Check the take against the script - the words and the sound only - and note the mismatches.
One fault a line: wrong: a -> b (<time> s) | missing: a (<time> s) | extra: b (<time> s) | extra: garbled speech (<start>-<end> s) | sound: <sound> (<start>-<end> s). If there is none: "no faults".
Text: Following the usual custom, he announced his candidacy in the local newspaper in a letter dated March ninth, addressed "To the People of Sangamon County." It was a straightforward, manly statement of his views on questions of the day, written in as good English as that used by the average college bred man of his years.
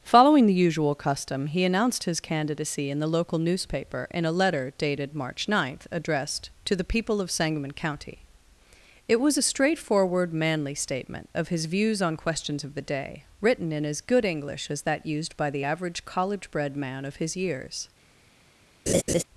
sound: laugh (18.9-19.2 s)